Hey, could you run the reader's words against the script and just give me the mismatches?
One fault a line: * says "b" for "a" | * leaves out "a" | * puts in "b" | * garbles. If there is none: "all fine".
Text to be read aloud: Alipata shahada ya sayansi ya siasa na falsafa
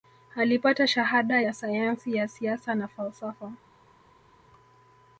all fine